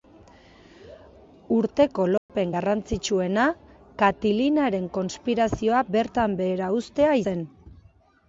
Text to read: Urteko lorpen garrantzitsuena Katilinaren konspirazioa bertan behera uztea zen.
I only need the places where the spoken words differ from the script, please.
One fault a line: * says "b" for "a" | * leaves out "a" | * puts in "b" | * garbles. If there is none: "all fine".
all fine